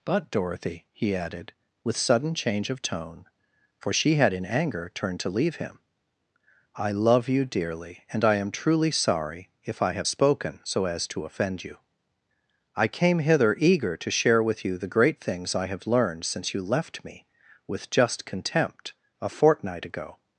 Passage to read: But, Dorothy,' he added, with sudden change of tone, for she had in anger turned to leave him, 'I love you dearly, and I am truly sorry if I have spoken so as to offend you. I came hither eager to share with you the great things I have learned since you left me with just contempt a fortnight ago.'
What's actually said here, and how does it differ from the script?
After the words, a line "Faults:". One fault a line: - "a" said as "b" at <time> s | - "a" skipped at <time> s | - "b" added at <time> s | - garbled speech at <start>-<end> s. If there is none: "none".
But, Dorothy,' he added, with sudden change of tone, for she had in anger turned to leave him, 'I love you dearly, and I am truly sorry if I have spoken so as to offend you. I came hither eager to share with you the great things I have learned since you left me with just contempt a fortnight ago.'
Faults:
none